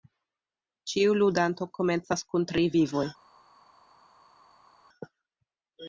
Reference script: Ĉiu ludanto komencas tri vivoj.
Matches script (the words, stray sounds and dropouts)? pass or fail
fail